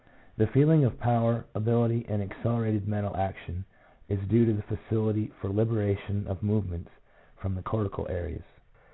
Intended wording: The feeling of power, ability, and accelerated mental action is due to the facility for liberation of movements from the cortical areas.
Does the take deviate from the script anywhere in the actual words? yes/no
no